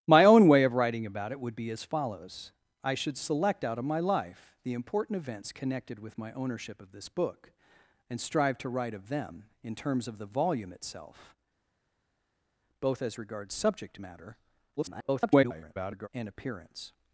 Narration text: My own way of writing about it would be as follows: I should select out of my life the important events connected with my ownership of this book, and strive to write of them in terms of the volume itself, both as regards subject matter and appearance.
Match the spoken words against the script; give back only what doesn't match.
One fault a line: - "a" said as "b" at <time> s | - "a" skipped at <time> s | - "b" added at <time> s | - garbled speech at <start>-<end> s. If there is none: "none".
- garbled speech at 14.8-16.1 s